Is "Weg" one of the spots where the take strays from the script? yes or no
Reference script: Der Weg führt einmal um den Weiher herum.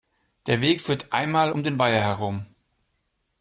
no